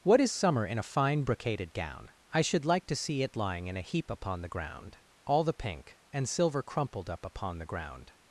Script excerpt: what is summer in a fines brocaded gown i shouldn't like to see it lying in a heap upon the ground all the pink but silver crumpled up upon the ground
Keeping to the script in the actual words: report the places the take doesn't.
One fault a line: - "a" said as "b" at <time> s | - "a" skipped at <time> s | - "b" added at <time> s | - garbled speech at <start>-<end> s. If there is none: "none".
- "fines" said as "fine" at 0.8 s
- "shouldn't" said as "should" at 2.4 s
- "but" said as "and" at 6.1 s